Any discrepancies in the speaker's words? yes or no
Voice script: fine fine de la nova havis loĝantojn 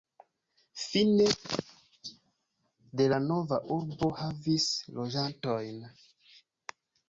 yes